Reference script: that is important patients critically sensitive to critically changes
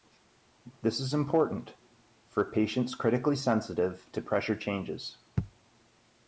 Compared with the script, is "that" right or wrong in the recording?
wrong